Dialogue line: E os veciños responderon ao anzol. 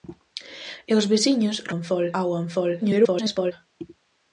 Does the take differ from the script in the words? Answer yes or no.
yes